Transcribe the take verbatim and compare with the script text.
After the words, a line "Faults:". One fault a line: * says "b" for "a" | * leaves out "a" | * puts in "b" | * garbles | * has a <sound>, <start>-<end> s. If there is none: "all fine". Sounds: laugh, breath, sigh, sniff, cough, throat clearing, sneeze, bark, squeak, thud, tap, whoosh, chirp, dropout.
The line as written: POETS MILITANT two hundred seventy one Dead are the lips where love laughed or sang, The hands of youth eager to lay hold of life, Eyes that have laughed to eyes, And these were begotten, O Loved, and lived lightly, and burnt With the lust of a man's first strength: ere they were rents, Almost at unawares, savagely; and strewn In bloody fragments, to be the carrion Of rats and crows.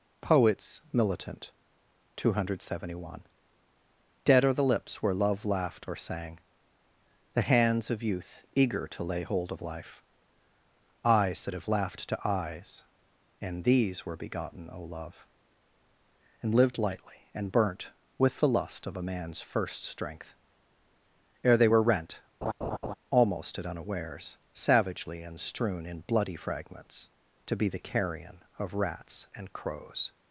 POETS MILITANT two hundred seventy one Dead are the lips where love laughed or sang, The hands of youth eager to lay hold of life, Eyes that have laughed to eyes, And these were begotten, O Love, and lived lightly, and burnt With the lust of a man's first strength: ere they were rent, Almost at unawares, savagely; and strewn In bloody fragments, to be the carrion Of rats and crows.
Faults:
* says "Love" for "Loved"
* says "rent" for "rents"
* has a laugh, 22.4-22.9 s